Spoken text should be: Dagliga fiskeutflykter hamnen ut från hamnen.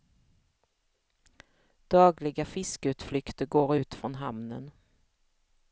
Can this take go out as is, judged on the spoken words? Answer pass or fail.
fail